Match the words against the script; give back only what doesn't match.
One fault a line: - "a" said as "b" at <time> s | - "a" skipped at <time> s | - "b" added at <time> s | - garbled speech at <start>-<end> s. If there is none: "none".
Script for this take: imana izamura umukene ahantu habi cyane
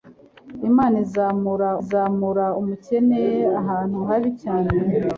- "izamura" added at 1.8 s